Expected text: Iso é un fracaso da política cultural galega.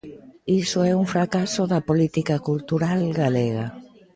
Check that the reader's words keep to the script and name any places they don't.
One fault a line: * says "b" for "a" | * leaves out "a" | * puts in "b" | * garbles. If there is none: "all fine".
all fine